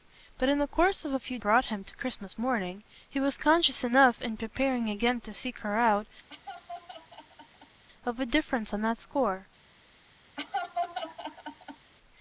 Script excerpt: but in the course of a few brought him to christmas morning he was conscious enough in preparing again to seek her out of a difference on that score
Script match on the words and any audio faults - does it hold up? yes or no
no